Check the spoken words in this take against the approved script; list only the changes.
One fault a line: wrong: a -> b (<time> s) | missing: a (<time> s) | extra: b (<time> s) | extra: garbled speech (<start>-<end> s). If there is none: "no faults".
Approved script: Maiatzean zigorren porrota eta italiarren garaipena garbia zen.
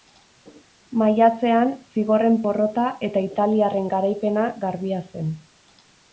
no faults